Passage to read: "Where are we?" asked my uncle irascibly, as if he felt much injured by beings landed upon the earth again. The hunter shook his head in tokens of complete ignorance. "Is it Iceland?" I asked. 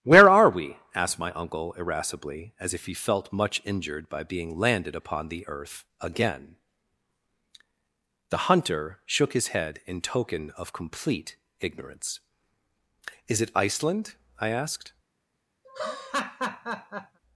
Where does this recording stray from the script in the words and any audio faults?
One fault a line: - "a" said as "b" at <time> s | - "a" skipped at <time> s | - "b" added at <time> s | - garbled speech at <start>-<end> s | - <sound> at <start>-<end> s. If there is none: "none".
- "beings" said as "being" at 4.2 s
- "tokens" said as "token" at 10.0 s
- laugh at 15.6-17.2 s